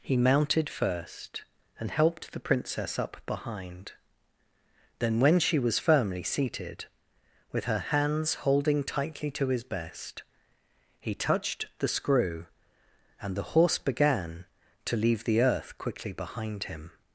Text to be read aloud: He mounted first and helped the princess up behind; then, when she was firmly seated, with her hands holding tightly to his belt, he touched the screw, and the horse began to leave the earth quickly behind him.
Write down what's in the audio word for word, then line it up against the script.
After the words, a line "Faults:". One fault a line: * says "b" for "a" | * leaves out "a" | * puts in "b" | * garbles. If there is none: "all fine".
He mounted first and helped the princess up behind; then, when she was firmly seated, with her hands holding tightly to his best, he touched the screw, and the horse began to leave the earth quickly behind him.
Faults:
* says "best" for "belt"